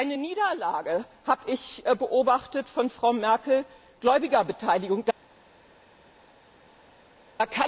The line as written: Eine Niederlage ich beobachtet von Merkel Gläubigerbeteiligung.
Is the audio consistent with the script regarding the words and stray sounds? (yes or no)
no